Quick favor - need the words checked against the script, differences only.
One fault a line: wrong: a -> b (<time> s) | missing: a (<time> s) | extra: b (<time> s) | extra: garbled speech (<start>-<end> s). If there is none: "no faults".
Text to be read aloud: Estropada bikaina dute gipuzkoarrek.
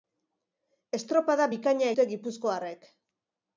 no faults